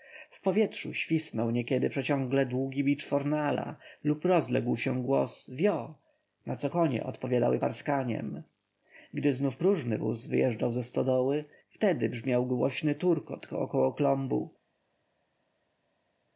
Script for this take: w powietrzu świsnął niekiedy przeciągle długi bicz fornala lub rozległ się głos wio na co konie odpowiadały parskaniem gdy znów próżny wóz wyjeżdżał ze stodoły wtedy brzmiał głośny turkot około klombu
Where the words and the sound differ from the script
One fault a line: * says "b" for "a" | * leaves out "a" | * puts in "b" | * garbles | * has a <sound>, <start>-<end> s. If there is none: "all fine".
all fine